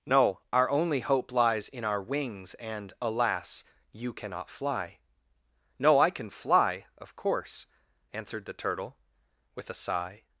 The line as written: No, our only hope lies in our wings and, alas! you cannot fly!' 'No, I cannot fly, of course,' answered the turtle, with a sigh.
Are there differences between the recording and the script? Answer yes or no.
yes